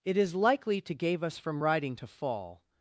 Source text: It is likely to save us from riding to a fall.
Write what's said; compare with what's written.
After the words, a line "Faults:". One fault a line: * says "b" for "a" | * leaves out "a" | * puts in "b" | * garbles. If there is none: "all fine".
It is likely to gave us from riding to fall.
Faults:
* says "gave" for "save"
* leaves out "a"